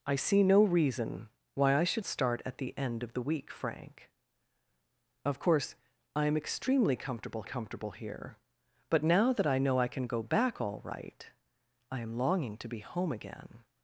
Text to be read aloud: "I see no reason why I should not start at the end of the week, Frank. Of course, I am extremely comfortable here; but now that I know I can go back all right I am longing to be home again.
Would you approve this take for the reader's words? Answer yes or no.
no